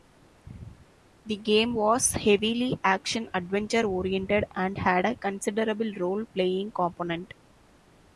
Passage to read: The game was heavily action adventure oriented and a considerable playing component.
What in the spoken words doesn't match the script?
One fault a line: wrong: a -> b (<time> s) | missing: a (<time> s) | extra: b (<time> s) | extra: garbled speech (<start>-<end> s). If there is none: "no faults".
extra: had (4.8 s)
extra: role (6.0 s)